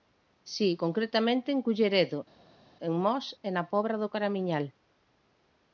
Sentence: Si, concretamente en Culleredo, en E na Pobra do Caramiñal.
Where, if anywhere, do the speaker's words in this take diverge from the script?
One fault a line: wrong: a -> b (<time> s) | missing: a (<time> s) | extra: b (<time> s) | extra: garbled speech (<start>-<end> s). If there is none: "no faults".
extra: Mos (3.0 s)